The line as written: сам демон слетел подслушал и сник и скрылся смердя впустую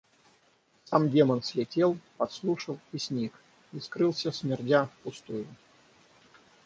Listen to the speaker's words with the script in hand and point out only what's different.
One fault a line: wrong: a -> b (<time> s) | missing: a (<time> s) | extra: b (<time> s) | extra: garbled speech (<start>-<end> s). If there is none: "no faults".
no faults